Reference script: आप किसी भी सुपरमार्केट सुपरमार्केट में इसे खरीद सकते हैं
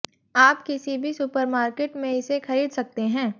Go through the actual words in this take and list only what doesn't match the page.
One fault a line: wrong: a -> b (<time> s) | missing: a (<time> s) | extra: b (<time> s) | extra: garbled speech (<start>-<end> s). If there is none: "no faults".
missing: सुपरमार्केट (2.0 s)